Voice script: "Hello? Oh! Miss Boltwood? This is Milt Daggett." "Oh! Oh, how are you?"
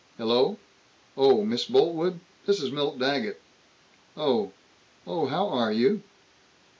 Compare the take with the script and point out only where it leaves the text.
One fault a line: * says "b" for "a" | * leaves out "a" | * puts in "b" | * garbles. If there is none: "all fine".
all fine